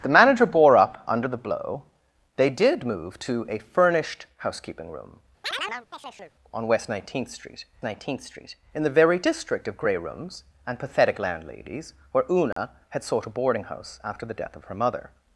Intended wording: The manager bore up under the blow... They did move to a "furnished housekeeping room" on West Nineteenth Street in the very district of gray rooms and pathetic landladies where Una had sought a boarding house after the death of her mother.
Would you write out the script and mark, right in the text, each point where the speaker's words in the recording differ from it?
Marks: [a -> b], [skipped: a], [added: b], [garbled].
The manager bore up under the blow... They did move to a "furnished housekeeping room" on West Nineteenth Street [added: Nineteenth Street] in the very district of gray rooms and pathetic landladies where Una had sought a boarding house after the death of her mother.